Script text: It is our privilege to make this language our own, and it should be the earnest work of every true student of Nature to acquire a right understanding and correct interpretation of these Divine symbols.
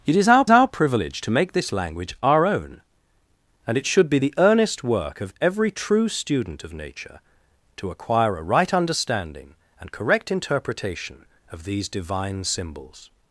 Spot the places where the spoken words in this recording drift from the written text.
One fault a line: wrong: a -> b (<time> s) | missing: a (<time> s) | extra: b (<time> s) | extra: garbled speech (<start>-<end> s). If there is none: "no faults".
extra: our (0.5 s)